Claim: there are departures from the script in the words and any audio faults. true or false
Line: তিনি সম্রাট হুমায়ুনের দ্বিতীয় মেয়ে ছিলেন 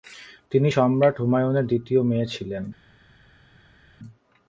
false